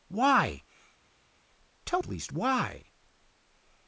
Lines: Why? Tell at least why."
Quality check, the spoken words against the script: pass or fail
pass